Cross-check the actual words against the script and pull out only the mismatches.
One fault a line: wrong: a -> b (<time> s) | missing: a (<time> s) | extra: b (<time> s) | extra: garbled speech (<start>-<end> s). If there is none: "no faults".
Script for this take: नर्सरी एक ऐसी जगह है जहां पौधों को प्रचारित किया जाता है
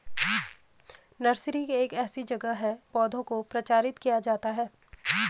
missing: जहां (2.8 s)